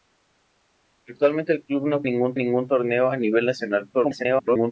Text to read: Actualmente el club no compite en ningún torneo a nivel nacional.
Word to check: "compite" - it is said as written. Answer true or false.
false